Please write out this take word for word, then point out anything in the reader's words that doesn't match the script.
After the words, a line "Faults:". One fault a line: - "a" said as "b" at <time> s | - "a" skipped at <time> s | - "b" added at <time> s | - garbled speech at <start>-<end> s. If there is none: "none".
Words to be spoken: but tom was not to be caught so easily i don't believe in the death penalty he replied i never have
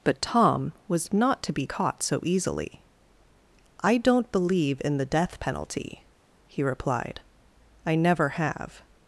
but tom was not to be caught so easily i don't believe in the death penalty he replied i never have
Faults:
none